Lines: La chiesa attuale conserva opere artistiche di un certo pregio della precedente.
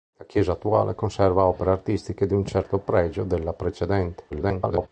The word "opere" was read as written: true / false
true